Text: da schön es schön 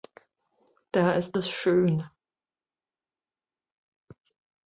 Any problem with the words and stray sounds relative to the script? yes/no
yes